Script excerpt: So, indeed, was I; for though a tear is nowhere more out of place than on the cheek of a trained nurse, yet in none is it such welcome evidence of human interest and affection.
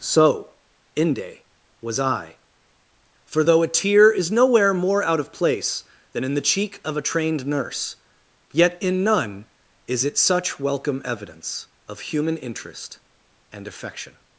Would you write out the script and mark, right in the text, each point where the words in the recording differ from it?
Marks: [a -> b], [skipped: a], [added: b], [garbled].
So, [indeed, -> inde] was I; for though a tear is nowhere more out of place than [on -> in] the cheek of a trained nurse, yet in none is it such welcome evidence of human interest and affection.